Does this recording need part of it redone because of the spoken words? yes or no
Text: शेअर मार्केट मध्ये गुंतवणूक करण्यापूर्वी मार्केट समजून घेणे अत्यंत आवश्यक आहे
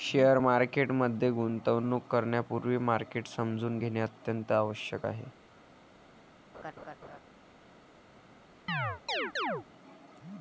no